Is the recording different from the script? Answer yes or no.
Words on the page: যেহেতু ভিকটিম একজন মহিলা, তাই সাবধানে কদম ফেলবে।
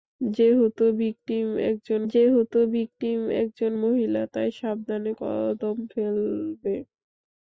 yes